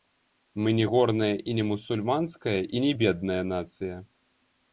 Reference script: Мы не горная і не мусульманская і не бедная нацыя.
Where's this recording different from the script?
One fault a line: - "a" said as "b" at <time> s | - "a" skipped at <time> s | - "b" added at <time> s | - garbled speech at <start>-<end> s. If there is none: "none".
none